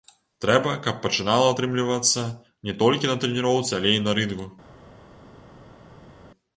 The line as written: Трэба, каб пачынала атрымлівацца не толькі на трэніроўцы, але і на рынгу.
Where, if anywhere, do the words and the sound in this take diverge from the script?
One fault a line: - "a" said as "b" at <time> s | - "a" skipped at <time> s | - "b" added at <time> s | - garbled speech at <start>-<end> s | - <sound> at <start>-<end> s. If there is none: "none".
none